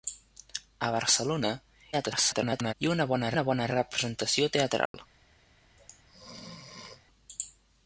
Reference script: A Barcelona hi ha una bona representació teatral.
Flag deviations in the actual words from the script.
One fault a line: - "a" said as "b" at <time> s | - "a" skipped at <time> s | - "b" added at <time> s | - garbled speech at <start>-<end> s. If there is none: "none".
- garbled speech at 1.9-2.7 s
- "una bona" added at 3.3 s